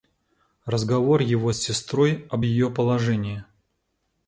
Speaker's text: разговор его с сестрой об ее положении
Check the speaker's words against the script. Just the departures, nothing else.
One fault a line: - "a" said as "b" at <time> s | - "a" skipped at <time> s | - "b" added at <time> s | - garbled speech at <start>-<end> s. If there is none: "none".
none